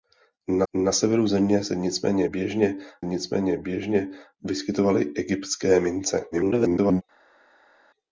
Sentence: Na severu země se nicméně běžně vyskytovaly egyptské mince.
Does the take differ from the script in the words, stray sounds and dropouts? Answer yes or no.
yes